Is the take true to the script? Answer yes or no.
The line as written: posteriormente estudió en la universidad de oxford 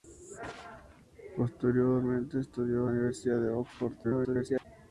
no